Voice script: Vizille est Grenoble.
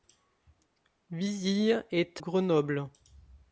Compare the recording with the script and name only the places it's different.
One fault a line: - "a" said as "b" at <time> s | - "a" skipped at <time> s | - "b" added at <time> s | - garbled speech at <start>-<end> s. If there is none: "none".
none